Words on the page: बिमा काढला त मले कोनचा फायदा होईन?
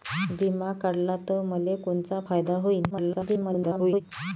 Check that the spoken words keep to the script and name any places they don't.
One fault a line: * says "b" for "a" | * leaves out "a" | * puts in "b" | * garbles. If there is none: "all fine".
* garbles